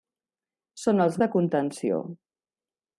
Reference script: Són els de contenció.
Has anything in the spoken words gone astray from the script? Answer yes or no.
no